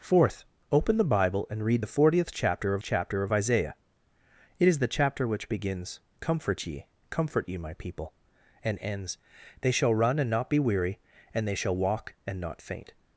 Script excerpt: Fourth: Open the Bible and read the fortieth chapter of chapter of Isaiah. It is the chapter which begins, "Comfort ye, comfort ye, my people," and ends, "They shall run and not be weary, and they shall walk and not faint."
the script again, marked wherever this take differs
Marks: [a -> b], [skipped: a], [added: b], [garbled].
Fourth: Open the Bible and read the fortieth chapter of chapter of Isaiah. It is the chapter which begins, "Comfort ye, comfort ye, my people," and ends, "They shall run and not be weary, and they shall walk and not faint."